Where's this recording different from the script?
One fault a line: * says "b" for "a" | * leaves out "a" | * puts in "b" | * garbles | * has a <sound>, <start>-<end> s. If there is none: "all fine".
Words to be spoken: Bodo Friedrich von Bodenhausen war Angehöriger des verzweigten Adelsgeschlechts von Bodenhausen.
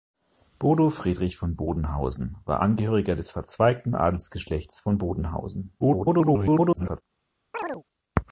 * garbles
* has a chirp, 7.5-7.8 s